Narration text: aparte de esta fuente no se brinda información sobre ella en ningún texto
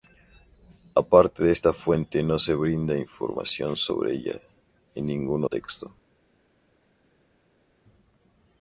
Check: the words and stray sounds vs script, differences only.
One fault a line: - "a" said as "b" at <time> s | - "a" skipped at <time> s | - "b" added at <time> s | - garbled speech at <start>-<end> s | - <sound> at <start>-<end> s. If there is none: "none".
none